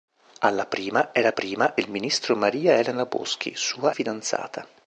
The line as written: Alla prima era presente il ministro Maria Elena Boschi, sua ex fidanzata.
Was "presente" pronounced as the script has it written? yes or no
no